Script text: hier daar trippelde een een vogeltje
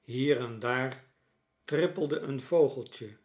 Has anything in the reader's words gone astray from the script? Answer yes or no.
yes